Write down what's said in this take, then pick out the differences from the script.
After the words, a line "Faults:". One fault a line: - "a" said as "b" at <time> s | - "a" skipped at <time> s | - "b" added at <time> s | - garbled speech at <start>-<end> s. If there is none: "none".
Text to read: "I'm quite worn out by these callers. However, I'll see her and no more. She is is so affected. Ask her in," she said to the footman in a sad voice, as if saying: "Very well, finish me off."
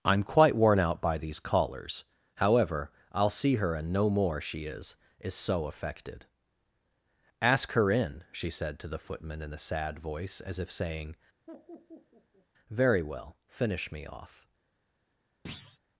"I'm quite worn out by these callers. However, I'll see her and no more. She is is so affected. Ask her in," she said to the footman in a sad voice, as if saying: "Very well, finish me off."
Faults:
none